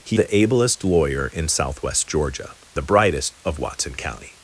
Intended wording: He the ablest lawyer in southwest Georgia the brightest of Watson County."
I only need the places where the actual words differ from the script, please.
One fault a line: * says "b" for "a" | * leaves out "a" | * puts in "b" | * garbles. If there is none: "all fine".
all fine